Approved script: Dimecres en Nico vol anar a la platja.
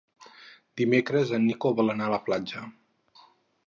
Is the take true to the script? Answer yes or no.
yes